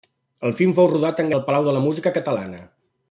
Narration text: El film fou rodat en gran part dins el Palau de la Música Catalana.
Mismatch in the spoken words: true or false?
true